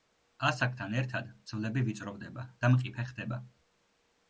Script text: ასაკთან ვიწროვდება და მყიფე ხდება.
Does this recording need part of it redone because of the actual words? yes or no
yes